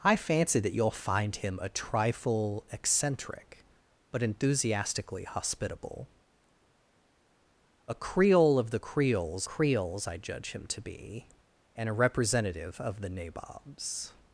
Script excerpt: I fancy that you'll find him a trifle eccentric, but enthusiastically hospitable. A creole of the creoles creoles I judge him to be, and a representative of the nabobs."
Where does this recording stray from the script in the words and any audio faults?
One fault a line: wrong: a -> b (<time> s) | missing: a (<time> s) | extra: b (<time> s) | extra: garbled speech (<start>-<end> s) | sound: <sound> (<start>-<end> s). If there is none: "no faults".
no faults